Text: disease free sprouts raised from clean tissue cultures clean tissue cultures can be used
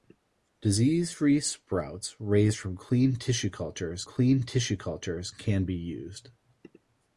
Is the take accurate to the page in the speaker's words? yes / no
yes